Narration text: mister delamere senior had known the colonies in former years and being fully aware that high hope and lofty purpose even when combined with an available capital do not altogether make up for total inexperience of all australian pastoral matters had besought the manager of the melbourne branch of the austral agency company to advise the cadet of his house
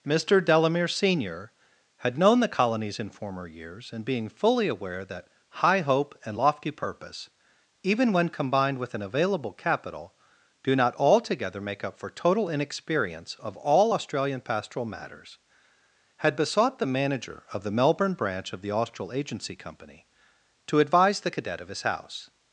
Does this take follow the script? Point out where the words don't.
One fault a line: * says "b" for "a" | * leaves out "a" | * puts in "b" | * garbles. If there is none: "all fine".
all fine